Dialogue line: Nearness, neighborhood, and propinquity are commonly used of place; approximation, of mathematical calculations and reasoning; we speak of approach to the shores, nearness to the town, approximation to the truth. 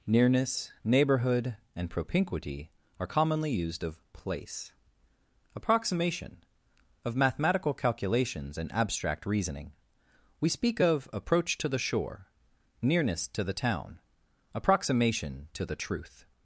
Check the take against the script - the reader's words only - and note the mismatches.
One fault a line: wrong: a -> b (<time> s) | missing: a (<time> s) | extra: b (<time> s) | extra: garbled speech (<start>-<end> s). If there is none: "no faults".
extra: abstract (8.7 s)
wrong: shores -> shore (11.8 s)